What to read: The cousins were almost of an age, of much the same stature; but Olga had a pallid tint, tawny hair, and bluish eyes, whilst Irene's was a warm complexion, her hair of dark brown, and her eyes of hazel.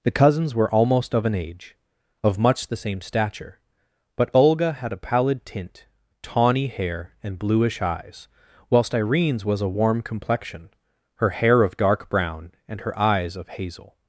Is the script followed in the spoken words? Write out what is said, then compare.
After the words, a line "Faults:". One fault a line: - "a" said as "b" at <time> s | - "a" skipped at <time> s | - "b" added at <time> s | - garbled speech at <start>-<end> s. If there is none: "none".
The cousins were almost of an age, of much the same stature; but Olga had a pallid tint, tawny hair, and bluish eyes, whilst Irene's was a warm complexion, her hair of dark brown, and her eyes of hazel.
Faults:
none